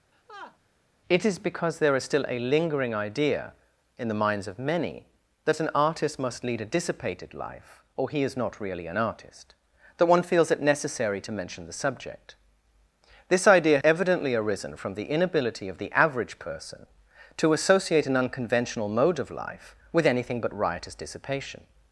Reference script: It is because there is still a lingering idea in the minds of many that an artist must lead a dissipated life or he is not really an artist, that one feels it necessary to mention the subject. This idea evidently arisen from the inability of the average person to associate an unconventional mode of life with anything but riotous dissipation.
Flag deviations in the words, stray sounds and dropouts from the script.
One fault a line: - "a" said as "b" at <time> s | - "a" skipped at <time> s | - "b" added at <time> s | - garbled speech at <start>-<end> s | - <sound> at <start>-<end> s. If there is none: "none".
- laugh at 0.1-0.6 s